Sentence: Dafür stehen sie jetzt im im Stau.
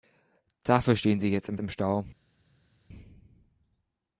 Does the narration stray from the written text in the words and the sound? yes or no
no